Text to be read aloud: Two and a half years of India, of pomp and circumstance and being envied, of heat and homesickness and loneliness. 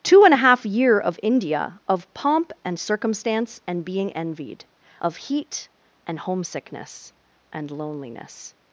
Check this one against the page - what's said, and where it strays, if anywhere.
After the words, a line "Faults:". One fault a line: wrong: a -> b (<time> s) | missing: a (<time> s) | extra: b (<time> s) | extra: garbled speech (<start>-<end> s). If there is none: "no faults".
Two and a half year of India, of pomp and circumstance and being envied, of heat and homesickness and loneliness.
Faults:
wrong: years -> year (0.7 s)